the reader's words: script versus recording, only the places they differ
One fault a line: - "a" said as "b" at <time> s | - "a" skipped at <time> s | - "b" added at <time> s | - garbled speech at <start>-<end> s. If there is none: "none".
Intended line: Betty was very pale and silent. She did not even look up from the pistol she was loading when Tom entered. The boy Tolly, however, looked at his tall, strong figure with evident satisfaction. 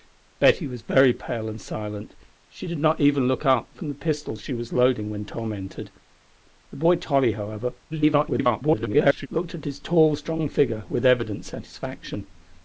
- garbled speech at 7.9-9.3 s